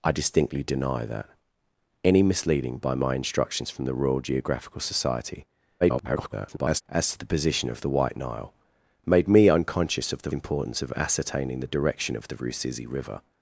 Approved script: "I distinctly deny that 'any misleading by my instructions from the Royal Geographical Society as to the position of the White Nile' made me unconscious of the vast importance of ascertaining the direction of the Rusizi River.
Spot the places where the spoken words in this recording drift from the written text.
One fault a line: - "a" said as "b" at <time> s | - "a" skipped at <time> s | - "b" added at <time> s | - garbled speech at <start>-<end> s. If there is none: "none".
- garbled speech at 5.8-6.8 s
- "vast" skipped at 10.3 s